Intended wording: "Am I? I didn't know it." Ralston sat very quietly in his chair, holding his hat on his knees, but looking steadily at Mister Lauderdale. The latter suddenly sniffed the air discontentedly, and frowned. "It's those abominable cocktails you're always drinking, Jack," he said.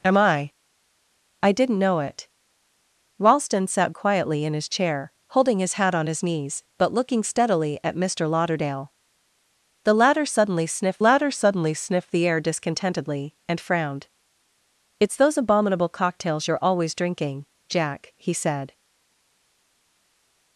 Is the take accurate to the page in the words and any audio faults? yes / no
no